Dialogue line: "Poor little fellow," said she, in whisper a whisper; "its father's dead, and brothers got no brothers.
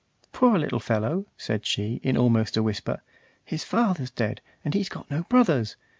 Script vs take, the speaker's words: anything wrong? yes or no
yes